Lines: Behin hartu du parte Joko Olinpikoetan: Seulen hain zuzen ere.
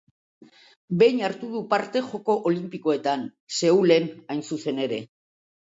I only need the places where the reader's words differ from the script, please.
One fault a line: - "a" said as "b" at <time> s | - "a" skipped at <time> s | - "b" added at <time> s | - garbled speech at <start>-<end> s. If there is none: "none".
none